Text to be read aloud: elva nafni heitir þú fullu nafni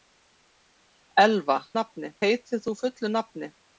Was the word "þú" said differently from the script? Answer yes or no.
no